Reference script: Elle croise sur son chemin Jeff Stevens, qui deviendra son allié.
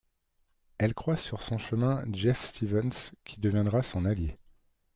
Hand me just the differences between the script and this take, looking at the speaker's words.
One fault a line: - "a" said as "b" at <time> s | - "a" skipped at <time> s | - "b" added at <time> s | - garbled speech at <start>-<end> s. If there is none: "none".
none